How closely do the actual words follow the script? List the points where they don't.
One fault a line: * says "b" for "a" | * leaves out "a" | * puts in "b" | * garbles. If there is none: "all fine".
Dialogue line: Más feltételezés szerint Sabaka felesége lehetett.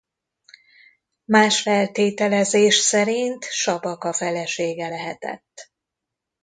all fine